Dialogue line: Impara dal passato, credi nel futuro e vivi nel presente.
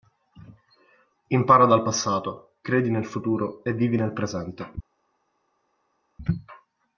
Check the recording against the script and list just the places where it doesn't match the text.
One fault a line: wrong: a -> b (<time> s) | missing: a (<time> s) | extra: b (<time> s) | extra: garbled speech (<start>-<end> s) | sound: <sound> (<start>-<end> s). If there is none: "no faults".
no faults